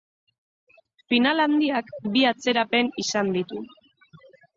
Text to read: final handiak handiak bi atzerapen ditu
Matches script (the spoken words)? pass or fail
fail